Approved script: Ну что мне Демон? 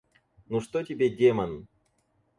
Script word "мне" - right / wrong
wrong